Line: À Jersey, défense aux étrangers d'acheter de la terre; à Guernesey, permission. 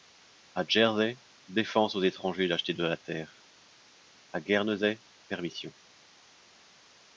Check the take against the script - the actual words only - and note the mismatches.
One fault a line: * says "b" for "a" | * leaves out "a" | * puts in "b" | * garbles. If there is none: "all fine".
all fine